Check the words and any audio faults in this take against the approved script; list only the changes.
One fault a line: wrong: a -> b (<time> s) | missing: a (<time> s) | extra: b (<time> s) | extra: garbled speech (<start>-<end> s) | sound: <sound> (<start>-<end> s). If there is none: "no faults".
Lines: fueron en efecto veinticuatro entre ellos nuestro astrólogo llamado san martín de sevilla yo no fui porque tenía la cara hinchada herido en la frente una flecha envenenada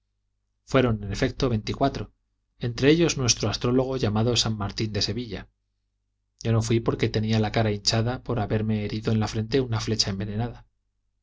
extra: por haberme (8.2 s)